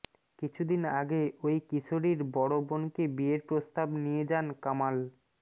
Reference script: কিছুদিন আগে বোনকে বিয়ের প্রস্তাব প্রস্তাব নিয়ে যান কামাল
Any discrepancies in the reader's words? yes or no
yes